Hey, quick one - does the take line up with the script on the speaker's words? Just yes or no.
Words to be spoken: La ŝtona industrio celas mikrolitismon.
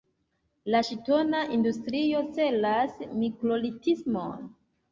yes